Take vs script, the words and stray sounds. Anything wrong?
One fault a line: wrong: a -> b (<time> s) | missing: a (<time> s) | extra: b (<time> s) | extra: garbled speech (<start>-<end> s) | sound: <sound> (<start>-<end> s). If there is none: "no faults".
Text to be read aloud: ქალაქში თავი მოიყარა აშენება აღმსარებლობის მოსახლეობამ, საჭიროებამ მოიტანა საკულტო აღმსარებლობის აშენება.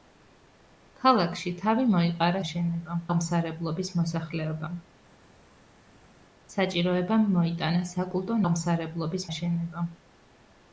no faults